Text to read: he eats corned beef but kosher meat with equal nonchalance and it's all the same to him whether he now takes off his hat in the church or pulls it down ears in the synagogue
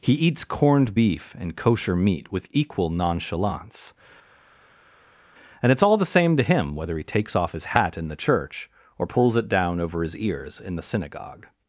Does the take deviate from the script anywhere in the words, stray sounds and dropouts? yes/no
yes